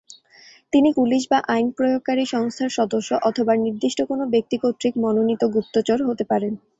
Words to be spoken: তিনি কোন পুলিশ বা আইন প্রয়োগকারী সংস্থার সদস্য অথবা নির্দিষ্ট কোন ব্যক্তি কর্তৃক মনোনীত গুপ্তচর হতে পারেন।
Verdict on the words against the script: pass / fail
fail